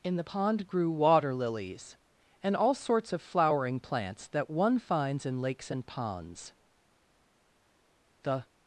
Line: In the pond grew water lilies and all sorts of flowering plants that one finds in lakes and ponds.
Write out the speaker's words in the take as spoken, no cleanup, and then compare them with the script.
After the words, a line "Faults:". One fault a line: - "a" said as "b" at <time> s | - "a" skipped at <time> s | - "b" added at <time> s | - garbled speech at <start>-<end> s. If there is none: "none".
In the pond grew water lilies and all sorts of flowering plants that one finds in lakes and ponds. The
Faults:
- "The" added at 8.2 s